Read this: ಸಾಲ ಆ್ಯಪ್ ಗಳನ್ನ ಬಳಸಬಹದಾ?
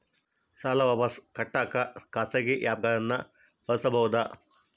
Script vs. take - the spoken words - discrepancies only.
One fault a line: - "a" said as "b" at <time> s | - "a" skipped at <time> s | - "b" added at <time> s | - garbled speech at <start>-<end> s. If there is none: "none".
- "ವಾಪಸ್ ಕಟ್ಟಕ ಖಾಸಗಿ" added at 0.8 s